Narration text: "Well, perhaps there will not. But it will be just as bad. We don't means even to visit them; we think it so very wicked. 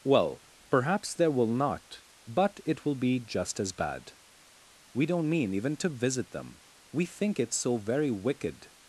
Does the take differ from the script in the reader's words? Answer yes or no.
yes